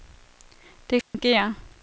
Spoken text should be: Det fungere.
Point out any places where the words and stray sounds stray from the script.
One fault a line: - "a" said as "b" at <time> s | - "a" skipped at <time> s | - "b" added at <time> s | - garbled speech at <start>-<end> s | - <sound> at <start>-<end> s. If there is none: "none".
- dropout at 1.0-1.1 s